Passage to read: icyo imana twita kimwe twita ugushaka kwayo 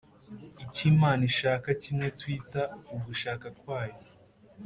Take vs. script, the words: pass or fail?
fail